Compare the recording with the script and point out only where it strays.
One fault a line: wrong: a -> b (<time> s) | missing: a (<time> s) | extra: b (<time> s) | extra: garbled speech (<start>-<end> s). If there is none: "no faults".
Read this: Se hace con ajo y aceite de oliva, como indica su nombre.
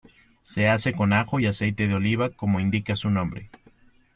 no faults